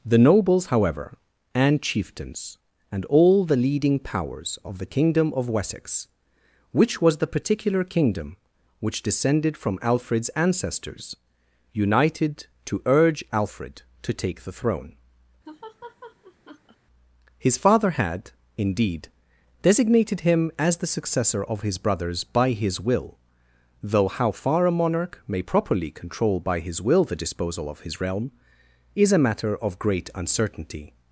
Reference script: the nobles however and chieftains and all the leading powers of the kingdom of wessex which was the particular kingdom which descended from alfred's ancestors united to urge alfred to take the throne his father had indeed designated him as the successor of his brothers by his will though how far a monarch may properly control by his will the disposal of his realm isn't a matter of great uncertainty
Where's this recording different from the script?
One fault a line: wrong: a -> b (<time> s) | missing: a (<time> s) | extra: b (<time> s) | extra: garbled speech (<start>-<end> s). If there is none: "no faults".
wrong: isn't -> is (28.9 s)